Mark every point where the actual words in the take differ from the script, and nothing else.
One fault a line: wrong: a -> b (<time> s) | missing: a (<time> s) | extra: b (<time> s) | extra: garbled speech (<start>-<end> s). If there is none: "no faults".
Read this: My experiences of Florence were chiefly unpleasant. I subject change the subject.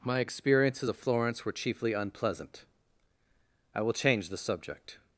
wrong: subject -> will (3.8 s)